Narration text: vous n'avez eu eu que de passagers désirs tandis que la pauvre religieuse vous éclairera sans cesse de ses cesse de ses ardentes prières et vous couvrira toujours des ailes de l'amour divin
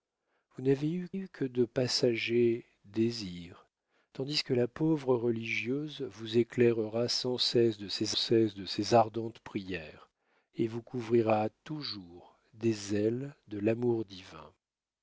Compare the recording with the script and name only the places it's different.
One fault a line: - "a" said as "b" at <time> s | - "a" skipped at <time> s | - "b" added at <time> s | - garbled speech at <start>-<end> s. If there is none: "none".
none